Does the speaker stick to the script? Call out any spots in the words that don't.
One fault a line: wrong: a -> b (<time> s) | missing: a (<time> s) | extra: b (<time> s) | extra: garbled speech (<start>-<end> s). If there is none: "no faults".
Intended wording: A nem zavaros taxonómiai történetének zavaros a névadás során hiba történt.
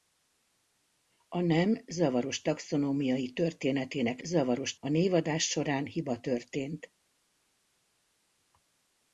no faults